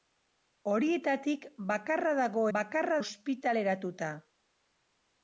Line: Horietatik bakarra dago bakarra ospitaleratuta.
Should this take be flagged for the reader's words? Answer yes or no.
no